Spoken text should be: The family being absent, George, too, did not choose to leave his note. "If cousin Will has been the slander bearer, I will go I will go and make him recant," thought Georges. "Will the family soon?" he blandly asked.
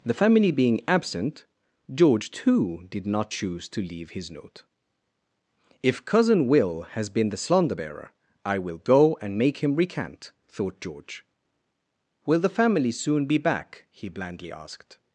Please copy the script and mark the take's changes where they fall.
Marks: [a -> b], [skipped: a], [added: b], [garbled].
The family being absent, George, too, did not choose to leave his note. "If cousin Will has been the slander bearer, I will go [skipped: I will go] and make him recant," thought [Georges. -> George] "Will the family soon?" [added: be back] he blandly asked.